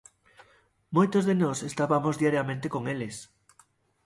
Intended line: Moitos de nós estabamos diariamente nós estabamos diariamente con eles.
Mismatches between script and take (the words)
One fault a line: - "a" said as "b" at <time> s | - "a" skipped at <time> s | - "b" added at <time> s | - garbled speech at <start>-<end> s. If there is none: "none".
- "nós estabamos diariamente" skipped at 2.7 s